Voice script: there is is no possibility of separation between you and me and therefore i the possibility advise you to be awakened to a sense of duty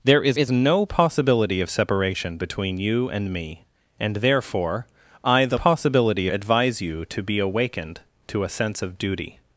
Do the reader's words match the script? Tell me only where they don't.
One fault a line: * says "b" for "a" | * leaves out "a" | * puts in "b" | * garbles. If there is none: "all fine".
all fine